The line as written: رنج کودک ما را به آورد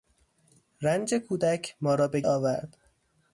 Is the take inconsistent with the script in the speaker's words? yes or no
no